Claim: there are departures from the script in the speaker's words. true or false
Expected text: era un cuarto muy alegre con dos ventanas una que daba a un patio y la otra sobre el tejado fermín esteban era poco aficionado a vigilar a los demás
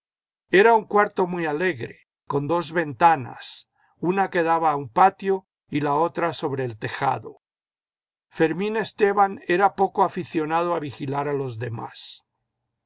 false